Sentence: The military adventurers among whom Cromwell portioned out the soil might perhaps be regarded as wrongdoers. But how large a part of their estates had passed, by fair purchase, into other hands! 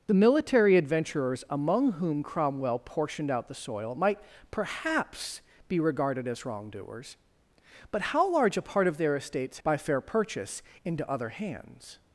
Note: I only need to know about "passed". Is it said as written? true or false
false